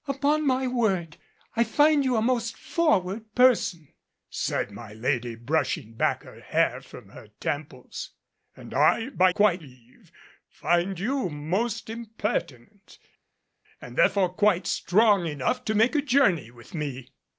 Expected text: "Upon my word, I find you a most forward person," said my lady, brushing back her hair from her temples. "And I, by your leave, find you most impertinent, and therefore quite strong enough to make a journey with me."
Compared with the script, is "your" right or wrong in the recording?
wrong